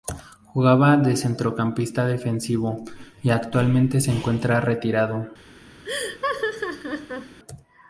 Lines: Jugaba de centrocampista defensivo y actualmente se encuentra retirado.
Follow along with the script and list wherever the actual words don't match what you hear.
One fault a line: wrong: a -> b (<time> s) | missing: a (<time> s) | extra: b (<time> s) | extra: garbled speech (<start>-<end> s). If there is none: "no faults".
no faults